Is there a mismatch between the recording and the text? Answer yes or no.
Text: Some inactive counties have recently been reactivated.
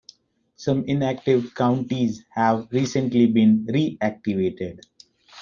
no